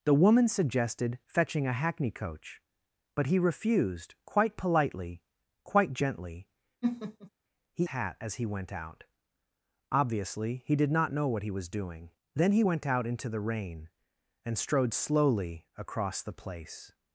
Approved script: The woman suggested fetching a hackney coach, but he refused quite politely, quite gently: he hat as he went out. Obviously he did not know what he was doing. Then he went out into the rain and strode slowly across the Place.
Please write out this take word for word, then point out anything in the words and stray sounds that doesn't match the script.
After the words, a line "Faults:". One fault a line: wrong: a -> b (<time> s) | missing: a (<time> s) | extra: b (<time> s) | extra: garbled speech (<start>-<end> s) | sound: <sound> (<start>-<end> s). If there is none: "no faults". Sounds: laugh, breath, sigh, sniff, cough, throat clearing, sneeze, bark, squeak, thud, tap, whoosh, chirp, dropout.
The woman suggested fetching a hackney coach, but he refused quite politely, quite gently: he hat as he went out. Obviously he did not know what he was doing. Then he went out into the rain and strode slowly across the Place.
Faults:
sound: laugh (6.8-7.3 s)